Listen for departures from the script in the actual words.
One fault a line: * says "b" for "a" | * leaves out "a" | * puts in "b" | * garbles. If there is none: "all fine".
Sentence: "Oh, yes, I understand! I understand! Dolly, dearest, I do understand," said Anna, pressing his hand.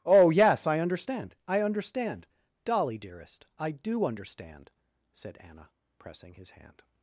all fine